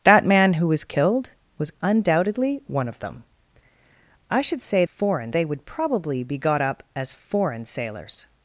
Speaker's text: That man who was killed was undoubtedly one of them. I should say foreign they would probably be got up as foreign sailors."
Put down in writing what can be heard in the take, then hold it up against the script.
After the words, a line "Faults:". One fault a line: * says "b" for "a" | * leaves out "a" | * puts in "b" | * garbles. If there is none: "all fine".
That man who was killed was undoubtedly one of them. I should say foreign they would probably be got up as foreign sailors."
Faults:
all fine